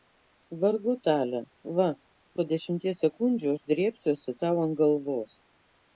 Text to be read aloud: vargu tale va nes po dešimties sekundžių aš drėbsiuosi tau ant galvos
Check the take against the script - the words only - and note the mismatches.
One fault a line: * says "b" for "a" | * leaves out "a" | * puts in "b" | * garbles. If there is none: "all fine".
* leaves out "nes"